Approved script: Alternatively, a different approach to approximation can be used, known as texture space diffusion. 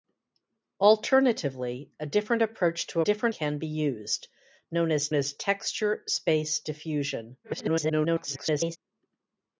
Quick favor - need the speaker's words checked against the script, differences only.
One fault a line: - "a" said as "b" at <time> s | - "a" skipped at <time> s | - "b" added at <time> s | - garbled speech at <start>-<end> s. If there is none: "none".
- "approximation" said as "different" at 3.0 s
- "as" added at 5.1 s
- garbled speech at 7.4-8.8 s